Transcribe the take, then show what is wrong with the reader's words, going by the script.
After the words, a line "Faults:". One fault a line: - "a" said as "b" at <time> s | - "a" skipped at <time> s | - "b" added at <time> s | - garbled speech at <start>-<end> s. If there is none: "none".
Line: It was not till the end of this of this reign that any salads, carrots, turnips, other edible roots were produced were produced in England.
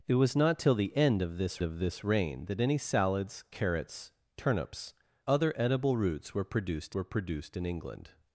It was not till the end of this of this reign that any salads, carrots, turnips, other edible roots were produced were produced in England.
Faults:
none